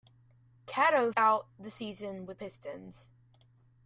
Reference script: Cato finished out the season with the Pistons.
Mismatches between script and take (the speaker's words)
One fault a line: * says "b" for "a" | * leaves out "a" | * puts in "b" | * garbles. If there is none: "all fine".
* leaves out "finished"
* leaves out "the"